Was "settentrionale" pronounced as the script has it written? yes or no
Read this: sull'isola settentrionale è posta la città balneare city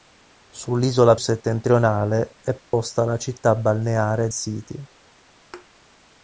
yes